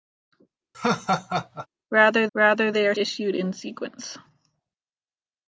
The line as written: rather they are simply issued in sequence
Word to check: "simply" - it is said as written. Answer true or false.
false